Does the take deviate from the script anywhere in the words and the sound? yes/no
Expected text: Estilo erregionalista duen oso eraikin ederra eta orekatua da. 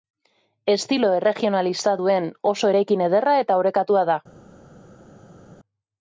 no